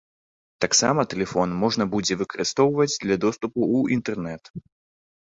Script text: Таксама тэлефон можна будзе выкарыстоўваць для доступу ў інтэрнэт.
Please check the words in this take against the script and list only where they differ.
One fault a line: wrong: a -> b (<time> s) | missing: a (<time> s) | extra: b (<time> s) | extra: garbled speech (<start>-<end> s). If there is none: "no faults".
no faults